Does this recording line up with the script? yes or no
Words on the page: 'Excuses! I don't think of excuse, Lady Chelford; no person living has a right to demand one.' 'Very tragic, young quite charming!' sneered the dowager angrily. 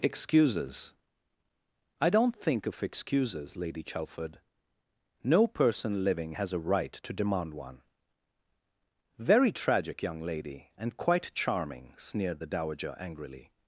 no